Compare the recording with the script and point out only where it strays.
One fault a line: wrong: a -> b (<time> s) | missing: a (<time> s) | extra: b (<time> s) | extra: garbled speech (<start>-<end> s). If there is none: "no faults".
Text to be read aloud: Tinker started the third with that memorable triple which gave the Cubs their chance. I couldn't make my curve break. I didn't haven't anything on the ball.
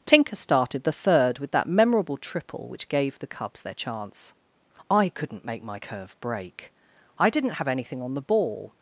wrong: haven't -> have (7.5 s)